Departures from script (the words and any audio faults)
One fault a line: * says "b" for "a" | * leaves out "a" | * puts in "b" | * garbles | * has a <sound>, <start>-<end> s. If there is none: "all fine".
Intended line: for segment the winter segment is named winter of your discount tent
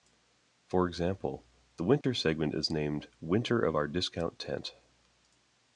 * says "example" for "segment"
* has a dropout, 2.0-2.0 s
* says "our" for "your"